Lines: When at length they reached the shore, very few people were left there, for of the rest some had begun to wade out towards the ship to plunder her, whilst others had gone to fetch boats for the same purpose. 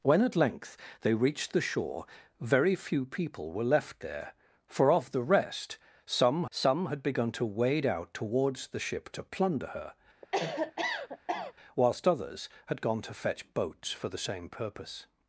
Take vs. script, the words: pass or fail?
fail